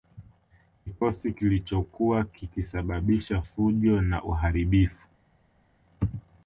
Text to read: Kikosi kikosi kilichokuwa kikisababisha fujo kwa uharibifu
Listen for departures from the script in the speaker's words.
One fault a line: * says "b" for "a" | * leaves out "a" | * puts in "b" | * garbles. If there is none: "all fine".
* leaves out "kikosi"
* says "na" for "kwa"